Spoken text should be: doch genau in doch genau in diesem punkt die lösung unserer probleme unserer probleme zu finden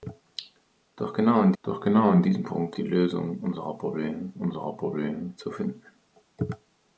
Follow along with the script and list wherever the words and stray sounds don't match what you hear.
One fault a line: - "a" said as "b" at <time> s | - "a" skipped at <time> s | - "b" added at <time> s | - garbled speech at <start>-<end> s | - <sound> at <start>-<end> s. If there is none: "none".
none